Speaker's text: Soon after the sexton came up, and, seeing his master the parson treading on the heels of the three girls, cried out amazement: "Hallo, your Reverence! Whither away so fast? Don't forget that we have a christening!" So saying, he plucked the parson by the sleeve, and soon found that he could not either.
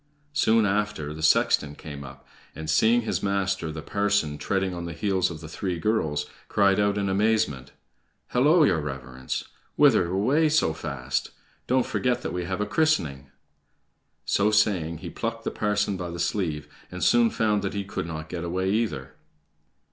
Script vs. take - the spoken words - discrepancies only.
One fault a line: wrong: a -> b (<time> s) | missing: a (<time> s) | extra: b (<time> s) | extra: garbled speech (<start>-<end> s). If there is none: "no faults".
extra: in (7.0 s)
extra: get away (18.3 s)